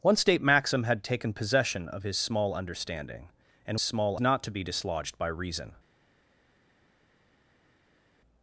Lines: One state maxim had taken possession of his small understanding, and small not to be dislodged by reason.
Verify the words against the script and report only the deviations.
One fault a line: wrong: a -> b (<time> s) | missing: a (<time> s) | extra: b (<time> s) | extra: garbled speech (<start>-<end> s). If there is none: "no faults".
no faults